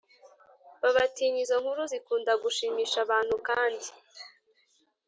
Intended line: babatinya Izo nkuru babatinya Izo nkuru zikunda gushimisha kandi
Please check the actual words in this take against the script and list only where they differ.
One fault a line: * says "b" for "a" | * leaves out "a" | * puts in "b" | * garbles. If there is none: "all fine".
* leaves out "babatinya Izo nkuru"
* puts in "abantu"